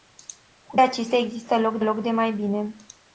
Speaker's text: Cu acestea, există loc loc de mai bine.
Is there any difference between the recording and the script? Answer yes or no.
no